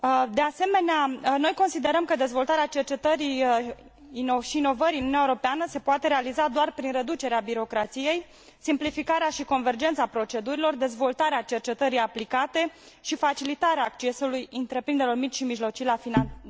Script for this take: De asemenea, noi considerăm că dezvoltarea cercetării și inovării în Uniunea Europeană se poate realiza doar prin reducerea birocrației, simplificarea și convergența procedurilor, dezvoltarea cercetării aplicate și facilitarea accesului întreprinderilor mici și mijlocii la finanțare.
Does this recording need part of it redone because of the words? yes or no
no